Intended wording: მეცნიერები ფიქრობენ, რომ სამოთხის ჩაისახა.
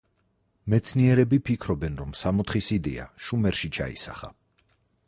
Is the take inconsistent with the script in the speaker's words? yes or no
yes